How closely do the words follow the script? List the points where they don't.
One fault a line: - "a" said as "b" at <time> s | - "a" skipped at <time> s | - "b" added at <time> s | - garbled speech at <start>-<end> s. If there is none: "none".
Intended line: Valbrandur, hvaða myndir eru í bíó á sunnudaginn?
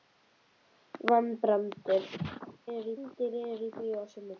- "hvaða" said as "eru" at 2.7 s